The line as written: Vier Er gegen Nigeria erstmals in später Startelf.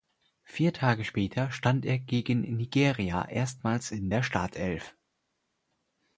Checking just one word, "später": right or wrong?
wrong